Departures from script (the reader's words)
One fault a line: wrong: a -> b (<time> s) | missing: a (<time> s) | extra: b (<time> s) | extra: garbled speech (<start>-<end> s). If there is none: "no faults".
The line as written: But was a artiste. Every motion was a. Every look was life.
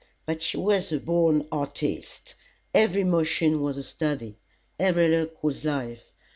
extra: she (0.4 s)
extra: born (1.0 s)
extra: study (3.8 s)